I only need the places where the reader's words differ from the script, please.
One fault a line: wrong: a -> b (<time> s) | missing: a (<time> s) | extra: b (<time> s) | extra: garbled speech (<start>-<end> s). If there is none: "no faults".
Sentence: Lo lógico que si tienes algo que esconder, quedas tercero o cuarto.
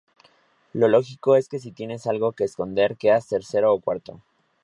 extra: es (1.4 s)